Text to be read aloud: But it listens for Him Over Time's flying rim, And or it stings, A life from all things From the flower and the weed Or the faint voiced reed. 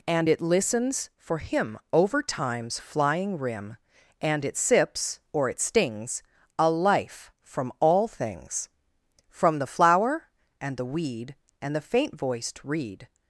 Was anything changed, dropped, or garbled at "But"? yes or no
yes